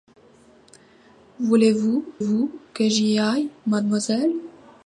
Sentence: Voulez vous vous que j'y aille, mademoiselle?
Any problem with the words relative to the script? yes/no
no